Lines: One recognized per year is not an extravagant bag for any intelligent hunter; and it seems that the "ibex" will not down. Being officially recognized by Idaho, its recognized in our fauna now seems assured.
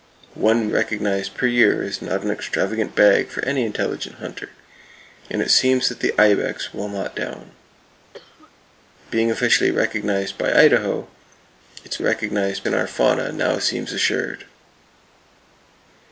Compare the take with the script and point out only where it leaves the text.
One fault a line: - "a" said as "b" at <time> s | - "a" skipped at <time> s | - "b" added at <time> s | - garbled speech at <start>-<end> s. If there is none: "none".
none